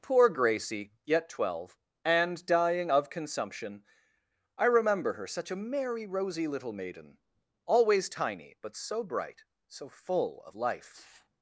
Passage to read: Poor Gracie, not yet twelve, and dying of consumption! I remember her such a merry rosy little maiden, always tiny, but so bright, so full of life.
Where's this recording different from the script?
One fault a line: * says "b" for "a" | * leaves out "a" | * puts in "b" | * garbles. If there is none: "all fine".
* leaves out "not"